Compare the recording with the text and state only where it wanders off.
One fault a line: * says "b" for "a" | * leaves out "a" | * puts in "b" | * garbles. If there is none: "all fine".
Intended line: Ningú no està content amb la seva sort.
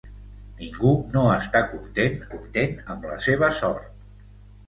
* puts in "content"